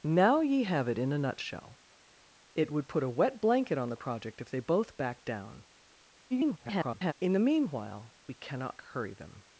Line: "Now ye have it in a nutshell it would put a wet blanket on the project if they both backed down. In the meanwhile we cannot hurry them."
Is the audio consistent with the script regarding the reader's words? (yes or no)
no